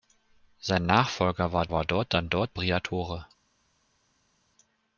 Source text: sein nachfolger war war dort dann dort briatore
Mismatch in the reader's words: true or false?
false